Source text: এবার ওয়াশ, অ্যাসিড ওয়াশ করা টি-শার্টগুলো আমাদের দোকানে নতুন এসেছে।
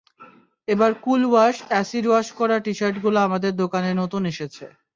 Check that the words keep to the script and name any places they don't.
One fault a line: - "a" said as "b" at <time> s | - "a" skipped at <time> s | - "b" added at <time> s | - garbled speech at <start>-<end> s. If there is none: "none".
- "কুল" added at 1.0 s